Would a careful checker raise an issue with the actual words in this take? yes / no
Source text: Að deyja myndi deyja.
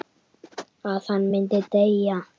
yes